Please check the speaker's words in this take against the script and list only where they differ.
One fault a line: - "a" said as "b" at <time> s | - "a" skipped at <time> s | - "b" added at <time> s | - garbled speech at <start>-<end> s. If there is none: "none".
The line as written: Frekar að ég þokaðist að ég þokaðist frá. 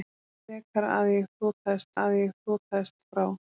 none